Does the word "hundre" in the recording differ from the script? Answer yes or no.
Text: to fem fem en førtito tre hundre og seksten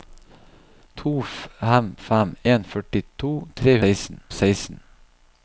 yes